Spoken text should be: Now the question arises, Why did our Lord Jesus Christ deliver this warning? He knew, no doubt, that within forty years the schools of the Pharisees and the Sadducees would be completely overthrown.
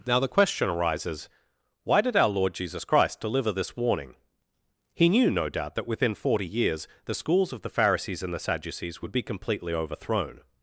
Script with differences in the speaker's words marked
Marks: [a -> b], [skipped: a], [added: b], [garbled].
Now the question arises, Why did our Lord Jesus Christ deliver this warning? He knew, no doubt, that within forty years the schools of the Pharisees and the Sadducees would be completely overthrown.